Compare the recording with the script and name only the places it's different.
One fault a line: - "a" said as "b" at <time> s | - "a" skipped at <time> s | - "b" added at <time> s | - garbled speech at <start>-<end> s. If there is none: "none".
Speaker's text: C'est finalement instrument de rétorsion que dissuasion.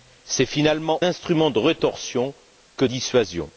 none